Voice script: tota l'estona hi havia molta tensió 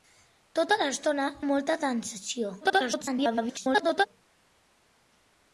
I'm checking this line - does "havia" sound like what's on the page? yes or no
no